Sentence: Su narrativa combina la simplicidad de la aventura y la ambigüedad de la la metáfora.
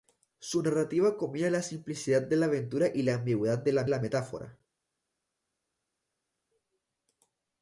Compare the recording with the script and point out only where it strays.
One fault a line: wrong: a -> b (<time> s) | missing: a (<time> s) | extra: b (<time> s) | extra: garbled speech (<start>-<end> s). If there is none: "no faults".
no faults